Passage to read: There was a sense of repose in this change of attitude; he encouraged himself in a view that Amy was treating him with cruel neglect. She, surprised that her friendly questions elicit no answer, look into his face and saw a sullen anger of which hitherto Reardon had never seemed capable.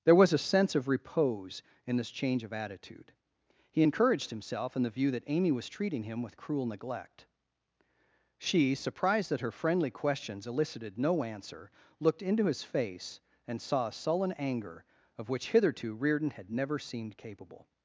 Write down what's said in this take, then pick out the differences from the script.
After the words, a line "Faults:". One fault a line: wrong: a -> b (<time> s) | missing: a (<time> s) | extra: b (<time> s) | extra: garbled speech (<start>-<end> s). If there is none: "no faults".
There was a sense of repose in this change of attitude; he encouraged himself in the view that Amy was treating him with cruel neglect. She, surprised that her friendly questions elicited no answer, looked into his face and saw a sullen anger of which hitherto Reardon had never seemed capable.
Faults:
wrong: a -> the (4.8 s)
wrong: elicit -> elicited (10.5 s)
wrong: look -> looked (12.0 s)